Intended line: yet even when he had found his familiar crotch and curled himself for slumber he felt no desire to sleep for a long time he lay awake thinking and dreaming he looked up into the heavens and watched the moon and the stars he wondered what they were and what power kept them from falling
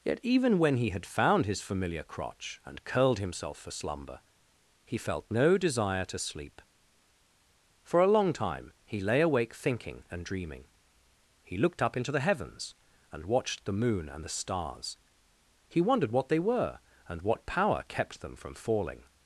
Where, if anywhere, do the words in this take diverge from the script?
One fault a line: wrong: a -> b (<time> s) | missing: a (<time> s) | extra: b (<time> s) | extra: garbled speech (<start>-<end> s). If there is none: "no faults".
no faults